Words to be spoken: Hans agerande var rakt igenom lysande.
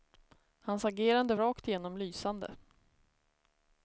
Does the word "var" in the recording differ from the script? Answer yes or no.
yes